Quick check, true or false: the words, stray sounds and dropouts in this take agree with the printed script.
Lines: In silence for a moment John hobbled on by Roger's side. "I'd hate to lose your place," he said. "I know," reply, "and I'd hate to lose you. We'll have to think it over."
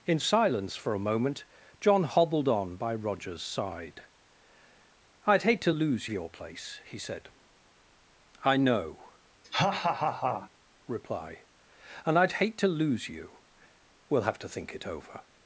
false